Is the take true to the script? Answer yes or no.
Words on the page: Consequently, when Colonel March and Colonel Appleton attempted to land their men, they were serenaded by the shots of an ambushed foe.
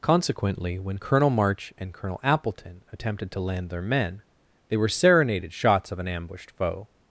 no